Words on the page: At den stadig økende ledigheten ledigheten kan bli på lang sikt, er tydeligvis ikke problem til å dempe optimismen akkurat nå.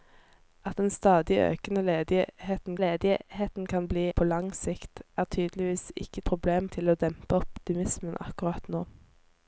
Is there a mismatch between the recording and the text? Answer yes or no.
no